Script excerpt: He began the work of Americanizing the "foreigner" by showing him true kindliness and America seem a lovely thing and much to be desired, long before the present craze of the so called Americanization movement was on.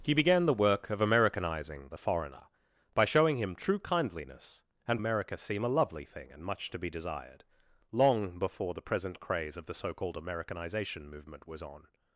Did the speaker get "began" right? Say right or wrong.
right